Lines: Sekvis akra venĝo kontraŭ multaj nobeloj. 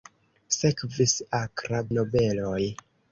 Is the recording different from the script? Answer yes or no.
yes